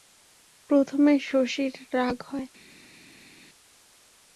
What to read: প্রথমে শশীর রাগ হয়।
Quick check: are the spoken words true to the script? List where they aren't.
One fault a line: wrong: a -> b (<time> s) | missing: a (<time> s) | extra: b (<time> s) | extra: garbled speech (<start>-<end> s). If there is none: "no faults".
no faults